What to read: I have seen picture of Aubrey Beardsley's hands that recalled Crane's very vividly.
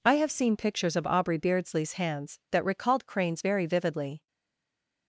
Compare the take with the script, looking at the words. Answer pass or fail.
fail